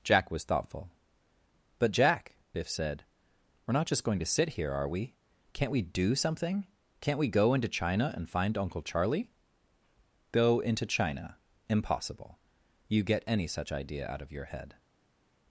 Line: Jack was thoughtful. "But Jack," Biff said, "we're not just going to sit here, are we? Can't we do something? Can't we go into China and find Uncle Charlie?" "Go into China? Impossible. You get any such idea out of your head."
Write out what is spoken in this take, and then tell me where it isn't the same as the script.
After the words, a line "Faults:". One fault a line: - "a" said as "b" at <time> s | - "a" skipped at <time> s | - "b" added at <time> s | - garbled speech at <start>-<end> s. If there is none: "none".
Jack was thoughtful. "But Jack," Biff said, "we're not just going to sit here, are we? Can't we do something? Can't we go into China and find Uncle Charlie?" "Go into China? Impossible. You get any such idea out of your head."
Faults:
none